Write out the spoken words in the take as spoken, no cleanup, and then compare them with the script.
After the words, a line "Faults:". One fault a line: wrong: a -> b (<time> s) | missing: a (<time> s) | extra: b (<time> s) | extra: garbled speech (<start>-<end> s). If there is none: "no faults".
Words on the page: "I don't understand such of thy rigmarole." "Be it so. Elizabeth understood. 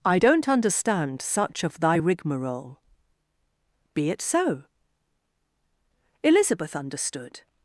"I don't understand such of thy rigmarole." "Be it so. Elizabeth understood.
Faults:
no faults